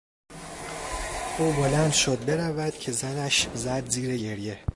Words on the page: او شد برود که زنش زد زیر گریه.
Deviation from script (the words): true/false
true